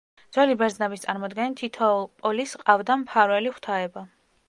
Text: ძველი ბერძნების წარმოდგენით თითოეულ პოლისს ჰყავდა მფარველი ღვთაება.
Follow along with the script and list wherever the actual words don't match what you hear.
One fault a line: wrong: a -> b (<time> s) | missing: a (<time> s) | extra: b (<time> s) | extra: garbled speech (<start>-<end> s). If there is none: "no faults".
no faults